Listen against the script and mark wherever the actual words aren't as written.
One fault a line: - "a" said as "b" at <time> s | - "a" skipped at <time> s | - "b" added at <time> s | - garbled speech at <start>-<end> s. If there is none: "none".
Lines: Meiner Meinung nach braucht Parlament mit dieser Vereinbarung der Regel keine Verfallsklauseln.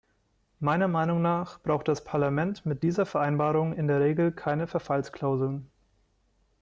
- "das" added at 1.9 s
- "in" added at 3.7 s